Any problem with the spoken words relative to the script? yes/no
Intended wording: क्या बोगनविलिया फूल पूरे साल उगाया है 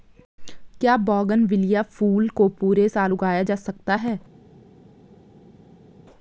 yes